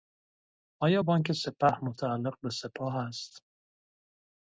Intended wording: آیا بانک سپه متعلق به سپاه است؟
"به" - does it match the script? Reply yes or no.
yes